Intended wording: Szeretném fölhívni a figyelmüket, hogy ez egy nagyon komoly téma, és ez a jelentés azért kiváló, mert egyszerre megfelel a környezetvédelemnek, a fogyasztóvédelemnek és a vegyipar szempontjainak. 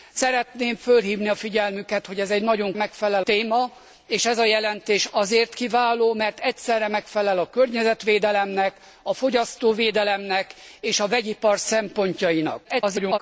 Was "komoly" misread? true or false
true